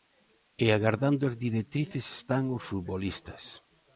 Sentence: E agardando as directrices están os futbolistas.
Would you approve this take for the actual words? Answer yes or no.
yes